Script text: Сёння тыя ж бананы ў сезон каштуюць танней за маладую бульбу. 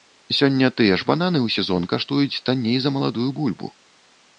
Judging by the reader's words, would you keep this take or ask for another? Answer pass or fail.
pass